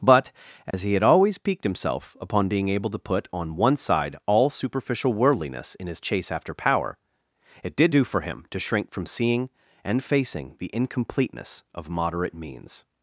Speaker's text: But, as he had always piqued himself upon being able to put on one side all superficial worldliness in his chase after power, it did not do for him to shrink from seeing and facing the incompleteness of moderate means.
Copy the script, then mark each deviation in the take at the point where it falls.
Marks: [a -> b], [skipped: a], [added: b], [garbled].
But, as he had always piqued himself upon being able to put on one side all superficial worldliness in his chase after power, it did [skipped: not] do for him to shrink from seeing and facing the incompleteness of moderate means.